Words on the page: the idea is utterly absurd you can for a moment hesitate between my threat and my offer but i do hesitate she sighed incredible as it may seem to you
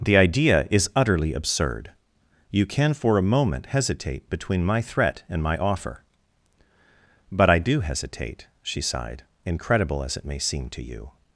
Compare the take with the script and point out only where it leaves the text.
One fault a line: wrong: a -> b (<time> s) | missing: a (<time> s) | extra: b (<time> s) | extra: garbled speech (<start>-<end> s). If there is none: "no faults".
no faults